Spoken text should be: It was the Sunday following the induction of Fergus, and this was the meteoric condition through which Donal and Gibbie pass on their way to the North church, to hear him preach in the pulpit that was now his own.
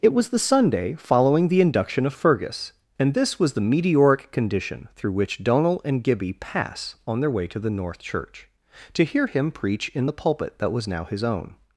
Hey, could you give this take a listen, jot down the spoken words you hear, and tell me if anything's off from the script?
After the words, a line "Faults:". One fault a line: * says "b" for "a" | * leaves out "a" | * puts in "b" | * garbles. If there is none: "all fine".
It was the Sunday following the induction of Fergus, and this was the meteoric condition through which Donal and Gibbie pass on their way to the North church, to hear him preach in the pulpit that was now his own.
Faults:
all fine